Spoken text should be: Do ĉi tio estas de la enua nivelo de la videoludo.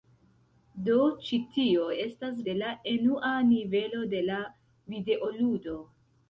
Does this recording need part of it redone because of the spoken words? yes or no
no